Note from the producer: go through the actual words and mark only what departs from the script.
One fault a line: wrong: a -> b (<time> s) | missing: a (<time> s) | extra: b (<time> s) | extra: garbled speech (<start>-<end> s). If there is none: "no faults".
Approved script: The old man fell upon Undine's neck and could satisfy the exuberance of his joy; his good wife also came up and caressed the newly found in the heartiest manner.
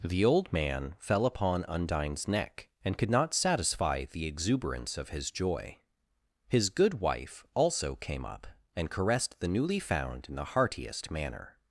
extra: not (3.1 s)